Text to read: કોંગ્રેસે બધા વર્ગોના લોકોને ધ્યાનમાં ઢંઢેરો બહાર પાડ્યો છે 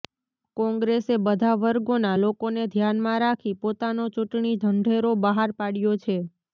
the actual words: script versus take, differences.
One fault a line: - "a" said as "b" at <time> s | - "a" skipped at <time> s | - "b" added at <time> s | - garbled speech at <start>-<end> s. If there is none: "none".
- "રાખી પોતાનો ચૂંટણી" added at 3.2 s